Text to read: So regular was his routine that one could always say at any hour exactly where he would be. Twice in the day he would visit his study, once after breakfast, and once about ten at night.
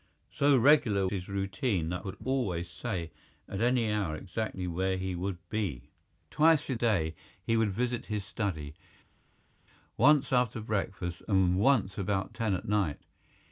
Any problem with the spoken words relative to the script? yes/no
yes